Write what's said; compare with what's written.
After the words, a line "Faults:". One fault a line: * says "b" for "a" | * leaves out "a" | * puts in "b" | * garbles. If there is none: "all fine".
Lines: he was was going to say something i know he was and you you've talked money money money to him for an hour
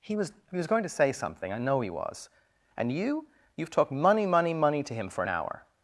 he was he was going to say something i know he was and you you've talked money money money to him for an hour
Faults:
* puts in "he"